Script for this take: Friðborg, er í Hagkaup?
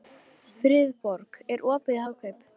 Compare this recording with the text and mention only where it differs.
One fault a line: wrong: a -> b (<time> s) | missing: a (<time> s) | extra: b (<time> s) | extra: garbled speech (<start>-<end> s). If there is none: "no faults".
extra: opið (1.8 s)